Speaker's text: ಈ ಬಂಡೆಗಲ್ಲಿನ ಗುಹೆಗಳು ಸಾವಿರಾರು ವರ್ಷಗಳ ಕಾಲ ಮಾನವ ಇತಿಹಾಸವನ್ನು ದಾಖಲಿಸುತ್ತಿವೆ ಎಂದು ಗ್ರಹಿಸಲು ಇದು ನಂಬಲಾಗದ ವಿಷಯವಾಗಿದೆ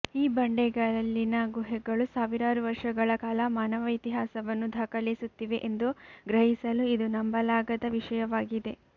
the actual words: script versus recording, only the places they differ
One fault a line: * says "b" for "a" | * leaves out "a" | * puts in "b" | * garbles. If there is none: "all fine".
all fine